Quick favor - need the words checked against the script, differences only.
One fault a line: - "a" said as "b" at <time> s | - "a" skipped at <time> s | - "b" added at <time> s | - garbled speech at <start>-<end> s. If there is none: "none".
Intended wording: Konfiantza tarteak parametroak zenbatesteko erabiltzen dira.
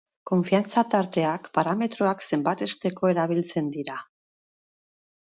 none